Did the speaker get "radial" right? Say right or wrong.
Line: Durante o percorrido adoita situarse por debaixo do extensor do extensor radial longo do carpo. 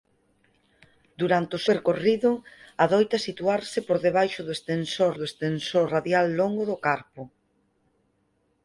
right